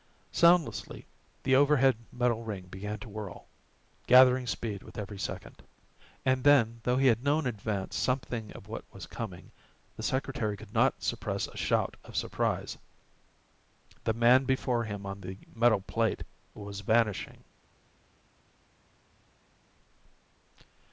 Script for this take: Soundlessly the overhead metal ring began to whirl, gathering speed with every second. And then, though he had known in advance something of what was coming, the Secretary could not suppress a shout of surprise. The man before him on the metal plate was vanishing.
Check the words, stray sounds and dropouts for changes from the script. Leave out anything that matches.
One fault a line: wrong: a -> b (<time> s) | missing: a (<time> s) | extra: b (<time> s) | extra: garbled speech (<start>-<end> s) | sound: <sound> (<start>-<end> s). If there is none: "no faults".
no faults